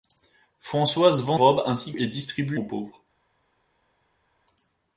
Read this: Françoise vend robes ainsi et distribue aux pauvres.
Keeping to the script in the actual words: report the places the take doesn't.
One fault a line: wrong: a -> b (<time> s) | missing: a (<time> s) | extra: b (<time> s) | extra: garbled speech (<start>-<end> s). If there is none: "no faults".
no faults